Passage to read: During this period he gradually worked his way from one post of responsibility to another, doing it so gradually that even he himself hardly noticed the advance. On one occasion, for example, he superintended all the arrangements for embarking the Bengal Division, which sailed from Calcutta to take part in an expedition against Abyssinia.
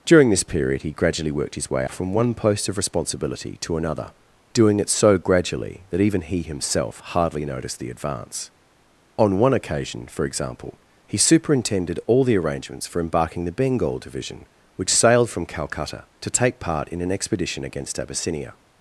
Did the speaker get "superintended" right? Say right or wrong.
right